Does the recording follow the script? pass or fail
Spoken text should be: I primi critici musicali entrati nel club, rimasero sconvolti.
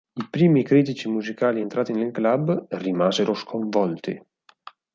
pass